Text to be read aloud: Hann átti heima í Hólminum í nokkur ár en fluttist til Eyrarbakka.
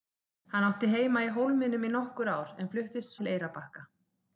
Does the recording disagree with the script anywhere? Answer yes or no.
no